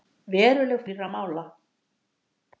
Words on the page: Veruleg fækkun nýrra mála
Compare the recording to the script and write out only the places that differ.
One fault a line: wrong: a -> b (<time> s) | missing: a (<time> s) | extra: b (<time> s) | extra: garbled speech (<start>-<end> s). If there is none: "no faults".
missing: fækkun (0.8 s)